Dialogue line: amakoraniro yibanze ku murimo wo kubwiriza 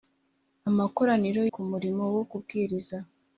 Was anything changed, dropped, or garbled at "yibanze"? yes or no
yes